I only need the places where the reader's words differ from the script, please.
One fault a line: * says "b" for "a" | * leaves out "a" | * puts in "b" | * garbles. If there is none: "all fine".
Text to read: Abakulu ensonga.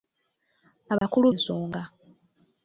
all fine